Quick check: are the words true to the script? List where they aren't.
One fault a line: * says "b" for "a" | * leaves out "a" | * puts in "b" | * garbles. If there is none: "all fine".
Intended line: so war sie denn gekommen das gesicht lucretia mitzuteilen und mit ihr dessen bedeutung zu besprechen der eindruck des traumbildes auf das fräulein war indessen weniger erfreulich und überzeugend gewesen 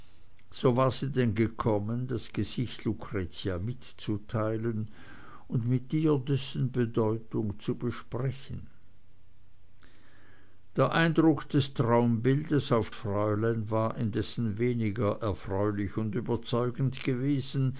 * leaves out "das"